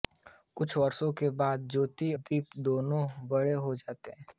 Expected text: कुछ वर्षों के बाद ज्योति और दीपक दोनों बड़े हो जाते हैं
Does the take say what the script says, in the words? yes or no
no